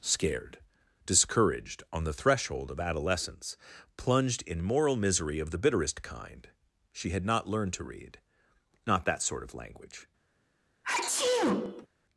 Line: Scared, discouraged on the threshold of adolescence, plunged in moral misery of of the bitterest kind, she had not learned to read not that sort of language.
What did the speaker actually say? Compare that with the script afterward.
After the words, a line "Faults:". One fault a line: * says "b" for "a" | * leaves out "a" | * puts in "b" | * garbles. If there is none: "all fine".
Scared, discouraged on the threshold of adolescence, plunged in moral misery of the bitterest kind, she had not learned to read not that sort of language.
Faults:
* leaves out "of"